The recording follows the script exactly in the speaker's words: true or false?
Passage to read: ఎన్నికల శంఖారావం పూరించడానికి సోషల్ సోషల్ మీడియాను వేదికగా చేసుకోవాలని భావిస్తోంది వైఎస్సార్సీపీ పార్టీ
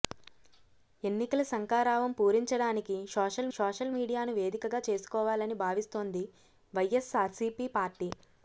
true